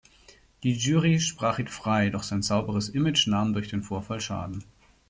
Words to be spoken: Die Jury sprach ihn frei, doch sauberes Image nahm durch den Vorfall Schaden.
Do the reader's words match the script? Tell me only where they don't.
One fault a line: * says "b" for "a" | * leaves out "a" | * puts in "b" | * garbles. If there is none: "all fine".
* puts in "sein"